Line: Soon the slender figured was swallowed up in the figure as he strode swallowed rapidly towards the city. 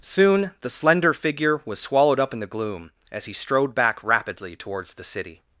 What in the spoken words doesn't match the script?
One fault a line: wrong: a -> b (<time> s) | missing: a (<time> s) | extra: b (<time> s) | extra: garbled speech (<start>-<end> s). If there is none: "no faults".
wrong: figured -> figure (1.1 s)
wrong: figure -> gloom (2.5 s)
wrong: swallowed -> back (3.8 s)